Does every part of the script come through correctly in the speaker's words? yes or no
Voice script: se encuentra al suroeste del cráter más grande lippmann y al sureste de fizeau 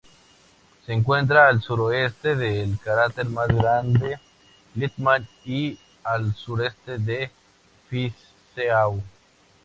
yes